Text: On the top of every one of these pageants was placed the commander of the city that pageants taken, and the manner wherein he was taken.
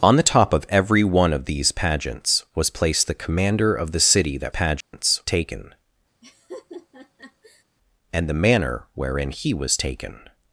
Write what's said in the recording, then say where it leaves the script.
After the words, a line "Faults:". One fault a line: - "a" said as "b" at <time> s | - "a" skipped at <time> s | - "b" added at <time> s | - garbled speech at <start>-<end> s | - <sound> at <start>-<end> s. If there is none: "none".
On the top of every one of these pageants was placed the commander of the city that pageants taken, and the manner wherein he was taken.
Faults:
- dropout at 4.8-4.9 s
- laugh at 6.2-7.6 s